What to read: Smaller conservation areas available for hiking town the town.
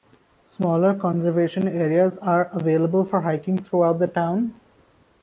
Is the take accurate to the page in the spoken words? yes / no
no